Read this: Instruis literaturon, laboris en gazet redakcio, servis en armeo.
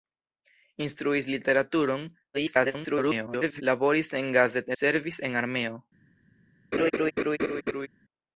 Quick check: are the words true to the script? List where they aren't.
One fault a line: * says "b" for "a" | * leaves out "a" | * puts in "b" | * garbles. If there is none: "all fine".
* garbles
* leaves out "redakcio"